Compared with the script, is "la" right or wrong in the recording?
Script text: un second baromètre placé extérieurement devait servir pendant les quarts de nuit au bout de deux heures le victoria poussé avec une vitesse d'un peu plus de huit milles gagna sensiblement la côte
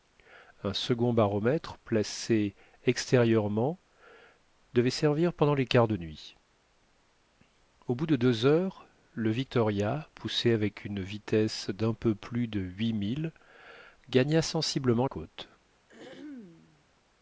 wrong